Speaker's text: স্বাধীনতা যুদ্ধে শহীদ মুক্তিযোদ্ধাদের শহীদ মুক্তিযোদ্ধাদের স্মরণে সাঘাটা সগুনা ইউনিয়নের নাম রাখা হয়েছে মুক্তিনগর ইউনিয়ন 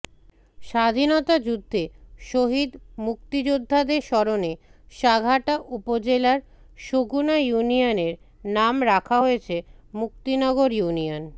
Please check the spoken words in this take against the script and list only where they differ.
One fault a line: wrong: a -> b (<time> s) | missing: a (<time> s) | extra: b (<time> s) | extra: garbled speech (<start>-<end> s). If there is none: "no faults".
missing: শহীদ মুক্তিযোদ্ধাদের (4.0 s)
extra: উপজেলার (5.8 s)